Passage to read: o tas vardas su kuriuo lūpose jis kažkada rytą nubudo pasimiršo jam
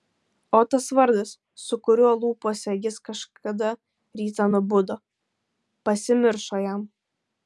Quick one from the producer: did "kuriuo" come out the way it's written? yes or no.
yes